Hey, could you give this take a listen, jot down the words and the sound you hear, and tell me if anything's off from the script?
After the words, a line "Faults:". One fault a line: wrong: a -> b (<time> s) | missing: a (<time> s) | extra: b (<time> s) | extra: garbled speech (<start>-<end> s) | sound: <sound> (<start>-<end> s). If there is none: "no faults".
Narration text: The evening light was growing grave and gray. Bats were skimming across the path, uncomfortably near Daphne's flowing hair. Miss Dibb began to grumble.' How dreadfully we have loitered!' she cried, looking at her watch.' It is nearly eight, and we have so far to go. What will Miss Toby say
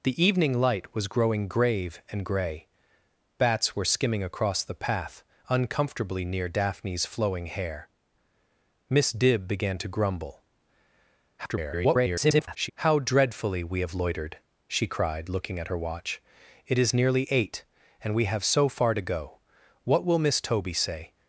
The evening light was growing grave and gray. Bats were skimming across the path, uncomfortably near Daphne's flowing hair. Miss Dibb began to grumble.' [garbled] How dreadfully we have loitered!' she cried, looking at her watch.' It is nearly eight, and we have so far to go. What will Miss Toby say
Faults:
extra: garbled speech (11.4-12.7 s)